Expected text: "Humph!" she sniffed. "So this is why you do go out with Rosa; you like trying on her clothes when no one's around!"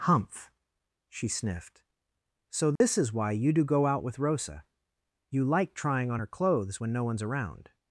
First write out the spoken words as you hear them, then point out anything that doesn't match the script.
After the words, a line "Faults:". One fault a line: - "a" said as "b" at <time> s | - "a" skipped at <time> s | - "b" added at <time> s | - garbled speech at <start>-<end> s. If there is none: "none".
"Humph!" she sniffed. "So this is why you do go out with Rosa; you like trying on her clothes when no one's around!"
Faults:
none